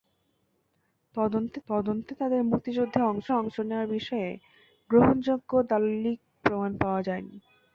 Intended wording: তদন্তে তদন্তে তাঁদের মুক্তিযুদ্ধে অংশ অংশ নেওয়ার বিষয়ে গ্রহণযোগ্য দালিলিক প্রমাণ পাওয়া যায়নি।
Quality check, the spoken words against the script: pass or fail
pass